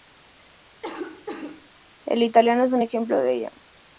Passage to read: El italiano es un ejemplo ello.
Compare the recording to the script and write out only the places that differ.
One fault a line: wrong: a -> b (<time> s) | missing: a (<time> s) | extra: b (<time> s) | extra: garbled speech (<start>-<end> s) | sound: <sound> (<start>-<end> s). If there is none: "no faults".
sound: cough (0.8-1.7 s)
extra: de (3.2 s)